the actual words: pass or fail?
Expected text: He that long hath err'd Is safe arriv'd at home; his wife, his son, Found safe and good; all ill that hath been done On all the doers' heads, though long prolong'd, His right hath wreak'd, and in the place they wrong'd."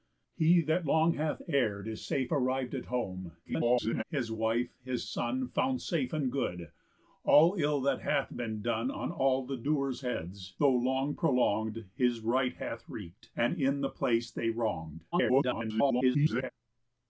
fail